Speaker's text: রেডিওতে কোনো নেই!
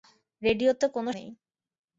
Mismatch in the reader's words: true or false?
false